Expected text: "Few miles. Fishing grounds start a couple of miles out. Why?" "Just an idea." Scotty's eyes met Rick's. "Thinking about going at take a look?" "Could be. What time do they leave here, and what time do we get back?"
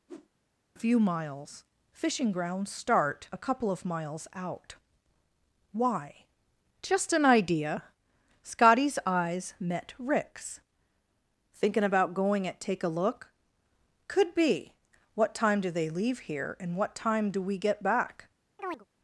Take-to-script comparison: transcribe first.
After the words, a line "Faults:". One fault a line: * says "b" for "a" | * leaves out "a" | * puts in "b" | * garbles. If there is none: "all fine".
"Few miles. Fishing grounds start a couple of miles out. Why?" "Just an idea." Scotty's eyes met Rick's. "Thinking about going at take a look?" "Could be. What time do they leave here, and what time do we get back?"
Faults:
all fine